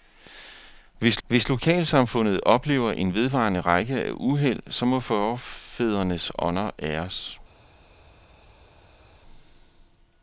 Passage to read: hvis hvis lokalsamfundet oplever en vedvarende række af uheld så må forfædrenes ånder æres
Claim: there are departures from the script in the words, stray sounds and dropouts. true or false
false